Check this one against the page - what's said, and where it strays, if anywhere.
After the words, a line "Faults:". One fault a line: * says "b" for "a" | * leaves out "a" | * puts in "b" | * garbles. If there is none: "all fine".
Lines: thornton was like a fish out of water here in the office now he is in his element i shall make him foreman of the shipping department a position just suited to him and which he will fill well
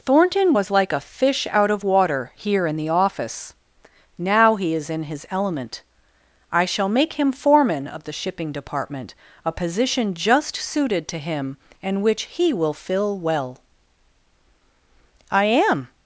thornton was like a fish out of water here in the office now he is in his element i shall make him foreman of the shipping department a position just suited to him and which he will fill well i am
Faults:
* puts in "i am"